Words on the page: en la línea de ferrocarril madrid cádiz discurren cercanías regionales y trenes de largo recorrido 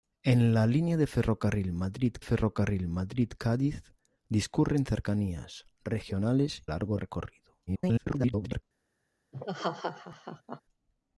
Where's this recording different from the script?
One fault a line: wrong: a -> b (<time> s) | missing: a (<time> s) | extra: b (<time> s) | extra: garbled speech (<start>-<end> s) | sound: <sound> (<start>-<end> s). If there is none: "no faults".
extra: ferrocarril madrid (2.2 s)
missing: y trenes de (6.6 s)
extra: garbled speech (7.7-8.6 s)
sound: laugh (9.3-10.6 s)